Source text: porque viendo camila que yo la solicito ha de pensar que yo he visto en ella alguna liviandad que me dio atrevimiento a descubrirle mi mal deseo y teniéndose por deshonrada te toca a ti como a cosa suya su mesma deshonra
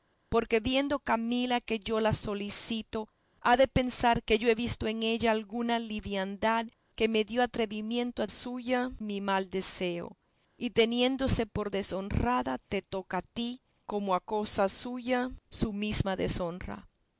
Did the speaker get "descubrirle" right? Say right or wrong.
wrong